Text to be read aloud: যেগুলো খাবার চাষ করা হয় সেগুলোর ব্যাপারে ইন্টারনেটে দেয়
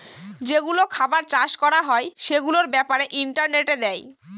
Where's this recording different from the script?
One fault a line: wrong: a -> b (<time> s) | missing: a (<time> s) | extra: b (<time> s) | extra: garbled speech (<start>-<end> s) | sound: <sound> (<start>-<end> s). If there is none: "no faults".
no faults